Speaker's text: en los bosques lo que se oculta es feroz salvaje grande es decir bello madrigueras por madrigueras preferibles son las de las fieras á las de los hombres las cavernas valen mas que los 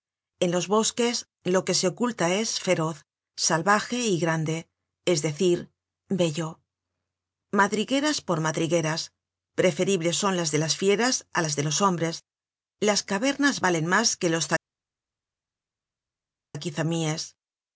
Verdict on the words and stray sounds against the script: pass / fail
fail